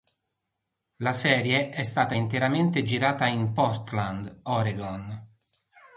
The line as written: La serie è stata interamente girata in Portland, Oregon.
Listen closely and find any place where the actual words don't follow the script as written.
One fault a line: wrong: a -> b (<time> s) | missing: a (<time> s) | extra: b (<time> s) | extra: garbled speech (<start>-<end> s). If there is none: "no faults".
no faults